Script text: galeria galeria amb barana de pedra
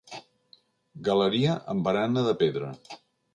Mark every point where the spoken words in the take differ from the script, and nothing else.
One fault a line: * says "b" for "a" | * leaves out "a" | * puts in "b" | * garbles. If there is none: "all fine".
* leaves out "galeria"